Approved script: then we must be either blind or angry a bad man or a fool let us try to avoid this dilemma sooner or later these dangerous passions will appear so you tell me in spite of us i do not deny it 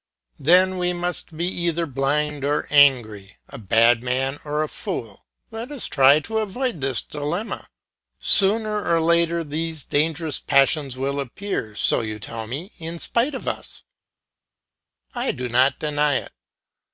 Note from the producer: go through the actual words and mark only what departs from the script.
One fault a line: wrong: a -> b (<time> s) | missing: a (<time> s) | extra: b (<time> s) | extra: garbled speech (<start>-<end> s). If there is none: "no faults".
no faults